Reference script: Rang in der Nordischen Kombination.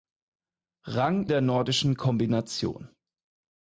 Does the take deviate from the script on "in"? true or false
true